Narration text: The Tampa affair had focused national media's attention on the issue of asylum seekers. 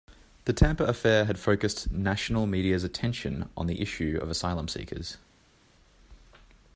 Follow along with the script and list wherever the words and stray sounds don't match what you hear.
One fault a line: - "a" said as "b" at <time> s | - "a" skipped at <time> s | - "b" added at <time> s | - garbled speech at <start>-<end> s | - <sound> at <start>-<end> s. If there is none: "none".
none